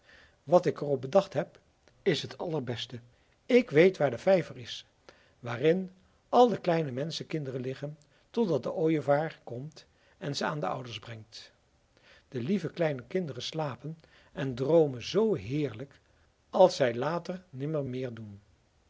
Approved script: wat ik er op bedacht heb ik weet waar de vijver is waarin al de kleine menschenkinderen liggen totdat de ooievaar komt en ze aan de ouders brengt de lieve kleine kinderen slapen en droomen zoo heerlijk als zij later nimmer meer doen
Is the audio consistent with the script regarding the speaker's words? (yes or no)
no